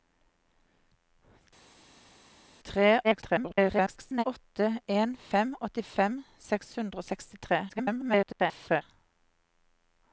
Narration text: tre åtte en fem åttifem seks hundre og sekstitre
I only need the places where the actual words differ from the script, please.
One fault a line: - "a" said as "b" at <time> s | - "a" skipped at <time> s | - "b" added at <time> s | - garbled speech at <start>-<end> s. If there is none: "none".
- garbled speech at 3.0-4.2 s
- garbled speech at 7.7-8.8 s